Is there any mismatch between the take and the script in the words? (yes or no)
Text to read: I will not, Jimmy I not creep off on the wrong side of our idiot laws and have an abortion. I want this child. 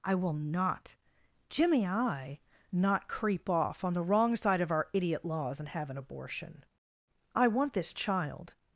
no